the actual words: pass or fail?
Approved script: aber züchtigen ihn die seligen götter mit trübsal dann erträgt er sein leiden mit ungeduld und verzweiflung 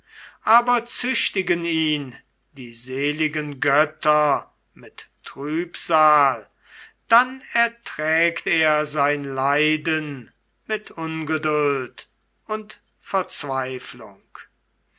pass